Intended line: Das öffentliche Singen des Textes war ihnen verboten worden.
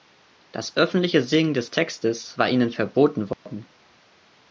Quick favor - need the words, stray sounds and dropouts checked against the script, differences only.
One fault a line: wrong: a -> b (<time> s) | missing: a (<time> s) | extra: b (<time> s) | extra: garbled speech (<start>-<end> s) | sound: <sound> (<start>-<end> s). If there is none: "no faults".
sound: dropout (3.3-3.5 s)